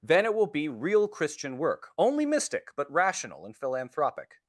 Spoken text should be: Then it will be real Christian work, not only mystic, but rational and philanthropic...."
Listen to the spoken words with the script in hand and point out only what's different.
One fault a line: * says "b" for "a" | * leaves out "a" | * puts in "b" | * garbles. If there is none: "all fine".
* leaves out "not"